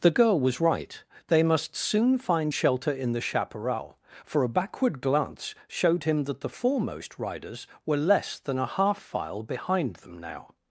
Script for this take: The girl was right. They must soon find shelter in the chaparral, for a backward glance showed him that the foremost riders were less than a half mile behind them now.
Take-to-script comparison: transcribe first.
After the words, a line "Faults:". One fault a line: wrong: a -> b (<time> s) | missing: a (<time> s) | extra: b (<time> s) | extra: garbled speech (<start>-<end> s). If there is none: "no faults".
The girl was right. They must soon find shelter in the chaparral, for a backward glance showed him that the foremost riders were less than a half file behind them now.
Faults:
wrong: mile -> file (9.0 s)